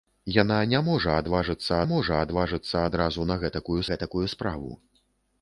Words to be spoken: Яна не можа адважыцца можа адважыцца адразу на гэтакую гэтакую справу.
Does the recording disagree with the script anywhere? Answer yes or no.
no